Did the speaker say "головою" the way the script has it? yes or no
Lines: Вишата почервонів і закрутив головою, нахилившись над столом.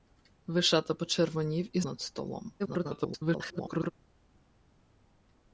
no